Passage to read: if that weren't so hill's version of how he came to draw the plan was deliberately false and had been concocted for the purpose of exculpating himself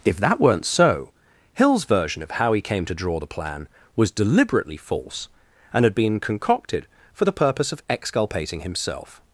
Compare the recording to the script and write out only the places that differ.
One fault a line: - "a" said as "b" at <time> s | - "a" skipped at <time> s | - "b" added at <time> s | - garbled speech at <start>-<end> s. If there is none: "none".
none